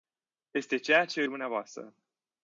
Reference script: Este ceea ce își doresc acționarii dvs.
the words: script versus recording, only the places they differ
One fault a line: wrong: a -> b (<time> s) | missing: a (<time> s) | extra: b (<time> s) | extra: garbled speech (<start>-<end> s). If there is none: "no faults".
missing: își doresc acționarii (1.2 s)